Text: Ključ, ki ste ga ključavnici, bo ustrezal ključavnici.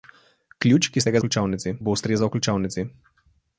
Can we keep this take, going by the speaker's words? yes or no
yes